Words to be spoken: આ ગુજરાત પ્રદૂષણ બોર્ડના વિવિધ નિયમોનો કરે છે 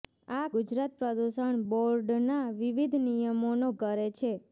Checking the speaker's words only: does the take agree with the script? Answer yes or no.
yes